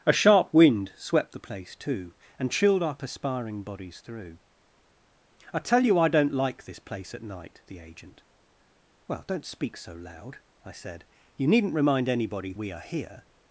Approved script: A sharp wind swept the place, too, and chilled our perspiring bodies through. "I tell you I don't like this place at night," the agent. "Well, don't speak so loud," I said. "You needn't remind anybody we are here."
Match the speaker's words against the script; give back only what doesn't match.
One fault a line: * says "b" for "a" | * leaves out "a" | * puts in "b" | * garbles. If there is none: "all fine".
all fine